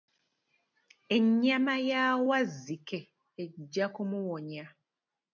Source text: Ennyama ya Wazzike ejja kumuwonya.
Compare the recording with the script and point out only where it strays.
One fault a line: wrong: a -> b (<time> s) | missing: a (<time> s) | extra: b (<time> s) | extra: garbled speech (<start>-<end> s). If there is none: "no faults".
no faults